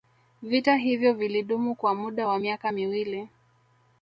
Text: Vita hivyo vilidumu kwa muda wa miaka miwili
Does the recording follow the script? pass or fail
pass